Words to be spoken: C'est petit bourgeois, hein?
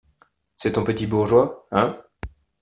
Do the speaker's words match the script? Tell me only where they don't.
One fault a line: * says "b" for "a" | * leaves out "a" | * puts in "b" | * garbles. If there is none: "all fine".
* puts in "ton"